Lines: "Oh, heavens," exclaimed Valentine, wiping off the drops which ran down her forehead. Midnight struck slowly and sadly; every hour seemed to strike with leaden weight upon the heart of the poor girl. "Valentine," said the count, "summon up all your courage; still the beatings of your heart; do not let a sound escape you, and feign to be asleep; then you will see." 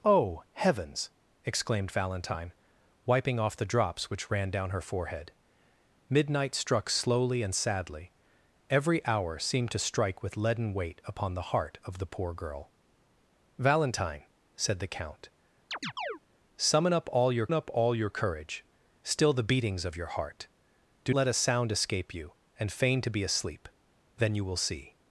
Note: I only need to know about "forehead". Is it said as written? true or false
true